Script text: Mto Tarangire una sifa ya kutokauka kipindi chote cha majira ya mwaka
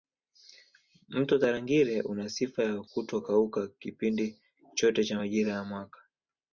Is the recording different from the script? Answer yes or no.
no